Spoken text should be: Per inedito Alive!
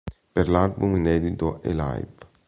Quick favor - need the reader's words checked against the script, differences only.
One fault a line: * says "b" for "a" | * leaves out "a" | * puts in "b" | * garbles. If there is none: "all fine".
* puts in "l'album"